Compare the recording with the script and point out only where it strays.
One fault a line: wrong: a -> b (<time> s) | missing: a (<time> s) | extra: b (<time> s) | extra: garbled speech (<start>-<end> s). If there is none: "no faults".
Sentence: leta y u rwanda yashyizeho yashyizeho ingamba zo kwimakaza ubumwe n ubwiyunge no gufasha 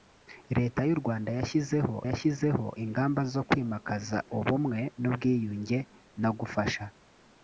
no faults